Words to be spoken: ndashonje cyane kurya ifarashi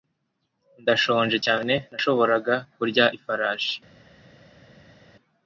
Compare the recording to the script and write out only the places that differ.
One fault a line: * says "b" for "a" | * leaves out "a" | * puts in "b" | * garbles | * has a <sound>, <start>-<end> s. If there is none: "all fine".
* puts in "nashoboraga"